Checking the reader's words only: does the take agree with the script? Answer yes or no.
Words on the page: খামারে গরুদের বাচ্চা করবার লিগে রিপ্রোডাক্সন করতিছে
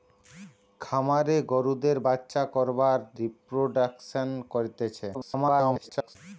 no